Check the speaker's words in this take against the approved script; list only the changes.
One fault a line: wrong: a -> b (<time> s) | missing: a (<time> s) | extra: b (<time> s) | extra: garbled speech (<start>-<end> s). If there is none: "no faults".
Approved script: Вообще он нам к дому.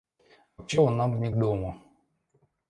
extra: не (1.2 s)